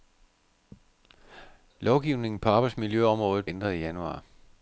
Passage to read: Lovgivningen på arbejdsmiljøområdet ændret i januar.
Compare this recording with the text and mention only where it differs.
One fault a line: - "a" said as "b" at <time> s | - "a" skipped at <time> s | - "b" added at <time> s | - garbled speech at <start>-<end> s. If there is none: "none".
none